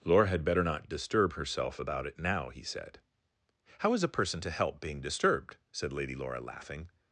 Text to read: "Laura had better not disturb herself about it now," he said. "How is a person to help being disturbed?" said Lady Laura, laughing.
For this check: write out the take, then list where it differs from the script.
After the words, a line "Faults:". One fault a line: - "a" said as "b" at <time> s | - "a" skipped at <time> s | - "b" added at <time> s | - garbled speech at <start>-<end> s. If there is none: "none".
"Laura had better not disturb herself about it now," he said. "How is a person to help being disturbed?" said Lady Laura, laughing.
Faults:
none